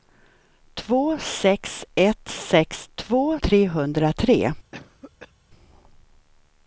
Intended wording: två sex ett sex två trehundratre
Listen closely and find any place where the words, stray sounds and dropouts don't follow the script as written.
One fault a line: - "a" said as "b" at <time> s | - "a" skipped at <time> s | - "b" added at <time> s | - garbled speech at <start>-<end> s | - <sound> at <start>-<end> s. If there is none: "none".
- cough at 4.7-5.3 s